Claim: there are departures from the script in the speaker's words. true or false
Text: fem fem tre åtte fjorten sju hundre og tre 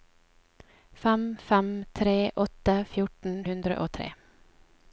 true